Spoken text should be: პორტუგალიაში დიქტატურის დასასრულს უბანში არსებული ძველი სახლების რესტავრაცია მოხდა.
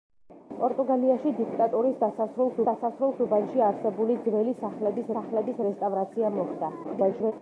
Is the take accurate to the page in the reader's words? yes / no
no